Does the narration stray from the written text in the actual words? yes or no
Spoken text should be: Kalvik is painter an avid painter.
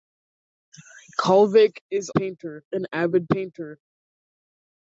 no